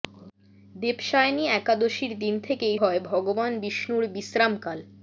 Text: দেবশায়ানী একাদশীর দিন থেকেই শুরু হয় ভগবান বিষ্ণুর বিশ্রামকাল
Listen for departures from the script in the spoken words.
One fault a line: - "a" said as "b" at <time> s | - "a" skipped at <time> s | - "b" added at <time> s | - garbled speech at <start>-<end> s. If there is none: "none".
- "শুরু" skipped at 2.8 s